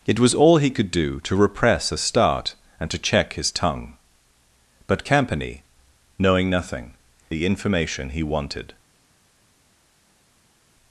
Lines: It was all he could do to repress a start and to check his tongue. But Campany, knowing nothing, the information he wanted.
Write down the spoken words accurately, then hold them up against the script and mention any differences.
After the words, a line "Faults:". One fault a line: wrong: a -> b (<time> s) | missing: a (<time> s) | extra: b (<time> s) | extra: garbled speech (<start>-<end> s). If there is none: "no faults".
It was all he could do to repress a start and to check his tongue. But Campany, knowing nothing, the information he wanted.
Faults:
no faults